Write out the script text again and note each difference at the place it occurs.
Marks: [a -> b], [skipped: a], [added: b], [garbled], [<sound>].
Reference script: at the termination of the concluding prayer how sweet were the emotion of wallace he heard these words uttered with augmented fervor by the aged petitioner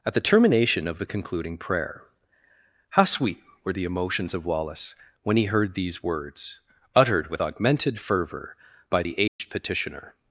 at the termination of the concluding prayer how sweet were the [emotion -> emotions] of wallace [added: when] he heard these words uttered with augmented fervor by the aged [dropout] petitioner